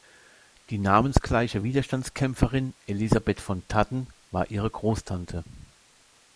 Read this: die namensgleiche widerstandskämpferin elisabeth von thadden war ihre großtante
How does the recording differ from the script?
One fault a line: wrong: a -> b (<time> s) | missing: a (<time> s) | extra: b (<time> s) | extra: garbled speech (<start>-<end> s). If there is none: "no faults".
no faults